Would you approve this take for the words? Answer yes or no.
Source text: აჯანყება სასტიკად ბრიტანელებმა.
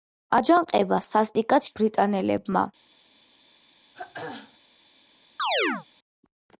yes